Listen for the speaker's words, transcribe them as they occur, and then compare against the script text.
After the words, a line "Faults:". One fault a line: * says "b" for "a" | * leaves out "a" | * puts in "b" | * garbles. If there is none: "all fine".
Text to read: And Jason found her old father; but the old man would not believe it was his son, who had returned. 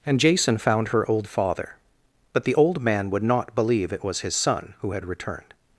And Jason found her old father; but the old man would not believe it was his son, who had returned.
Faults:
all fine